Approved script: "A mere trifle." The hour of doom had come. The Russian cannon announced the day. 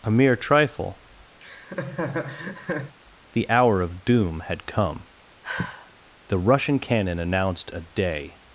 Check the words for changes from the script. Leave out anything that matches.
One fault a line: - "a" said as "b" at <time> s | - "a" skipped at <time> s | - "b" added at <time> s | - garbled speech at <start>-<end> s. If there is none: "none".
- "the" said as "a" at 7.7 s